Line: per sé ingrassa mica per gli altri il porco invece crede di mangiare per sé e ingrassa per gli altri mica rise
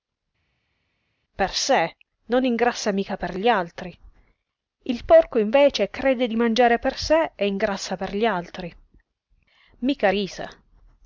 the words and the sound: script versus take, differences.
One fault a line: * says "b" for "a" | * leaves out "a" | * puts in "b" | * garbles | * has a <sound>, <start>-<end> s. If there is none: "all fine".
* puts in "non"